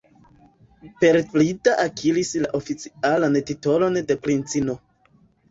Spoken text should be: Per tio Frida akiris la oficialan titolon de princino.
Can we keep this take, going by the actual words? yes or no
no